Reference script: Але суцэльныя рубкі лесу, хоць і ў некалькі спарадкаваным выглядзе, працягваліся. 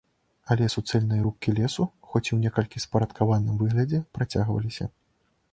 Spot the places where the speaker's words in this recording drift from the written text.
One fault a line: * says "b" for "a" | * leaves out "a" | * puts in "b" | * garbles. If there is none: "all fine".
all fine